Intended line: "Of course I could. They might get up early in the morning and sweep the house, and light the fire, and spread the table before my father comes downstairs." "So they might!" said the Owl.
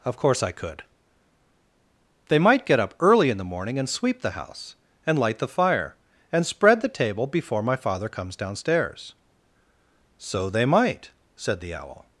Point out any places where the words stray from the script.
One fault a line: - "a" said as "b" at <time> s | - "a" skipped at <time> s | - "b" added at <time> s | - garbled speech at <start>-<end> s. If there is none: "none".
none